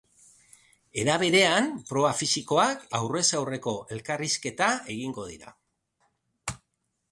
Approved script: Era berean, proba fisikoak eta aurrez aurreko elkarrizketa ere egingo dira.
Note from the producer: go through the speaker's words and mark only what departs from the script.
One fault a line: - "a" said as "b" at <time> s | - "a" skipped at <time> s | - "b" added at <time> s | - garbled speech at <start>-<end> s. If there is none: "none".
- "eta" skipped at 2.9 s
- "ere" skipped at 4.7 s